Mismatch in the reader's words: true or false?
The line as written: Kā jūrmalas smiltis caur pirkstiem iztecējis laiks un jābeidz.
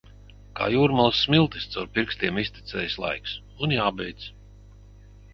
false